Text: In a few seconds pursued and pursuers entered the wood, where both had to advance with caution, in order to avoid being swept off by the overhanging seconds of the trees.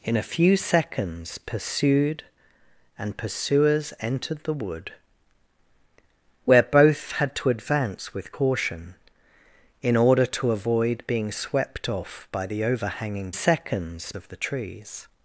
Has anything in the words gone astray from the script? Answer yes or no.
no